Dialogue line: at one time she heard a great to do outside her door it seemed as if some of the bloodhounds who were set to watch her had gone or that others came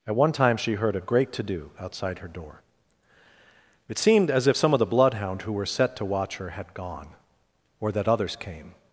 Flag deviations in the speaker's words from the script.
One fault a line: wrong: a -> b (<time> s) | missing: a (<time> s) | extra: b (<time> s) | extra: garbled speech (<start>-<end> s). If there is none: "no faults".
wrong: bloodhounds -> bloodhound (4.8 s)